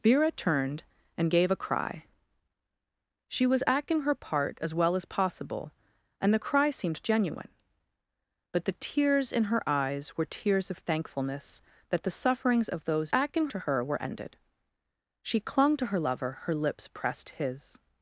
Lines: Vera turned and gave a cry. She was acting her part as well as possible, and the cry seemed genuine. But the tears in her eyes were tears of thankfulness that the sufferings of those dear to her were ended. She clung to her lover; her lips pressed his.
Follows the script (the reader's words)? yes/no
no